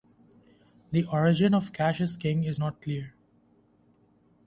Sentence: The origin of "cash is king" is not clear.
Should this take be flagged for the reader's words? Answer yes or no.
no